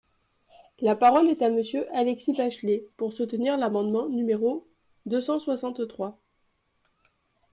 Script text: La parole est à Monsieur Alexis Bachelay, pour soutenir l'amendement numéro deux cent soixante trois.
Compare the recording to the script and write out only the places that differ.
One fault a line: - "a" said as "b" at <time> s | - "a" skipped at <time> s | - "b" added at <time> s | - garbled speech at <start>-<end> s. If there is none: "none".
none